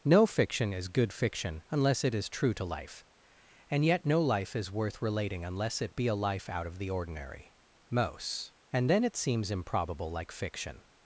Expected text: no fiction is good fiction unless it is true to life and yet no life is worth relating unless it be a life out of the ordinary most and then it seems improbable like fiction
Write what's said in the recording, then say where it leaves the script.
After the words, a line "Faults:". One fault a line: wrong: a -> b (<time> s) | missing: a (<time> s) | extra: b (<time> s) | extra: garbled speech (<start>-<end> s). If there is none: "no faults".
no fiction is good fiction unless it is true to life and yet no life is worth relating unless it be a life out of the ordinary most and then it seems improbable like fiction
Faults:
no faults